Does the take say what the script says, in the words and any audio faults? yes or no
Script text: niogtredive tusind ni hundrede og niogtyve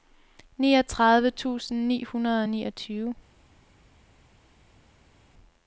yes